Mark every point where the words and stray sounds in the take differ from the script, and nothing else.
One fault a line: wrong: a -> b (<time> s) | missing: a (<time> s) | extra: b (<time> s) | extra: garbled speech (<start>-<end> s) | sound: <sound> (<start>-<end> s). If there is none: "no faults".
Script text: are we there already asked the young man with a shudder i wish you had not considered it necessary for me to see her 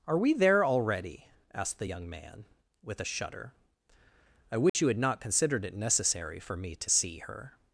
sound: dropout (4.7-4.7 s)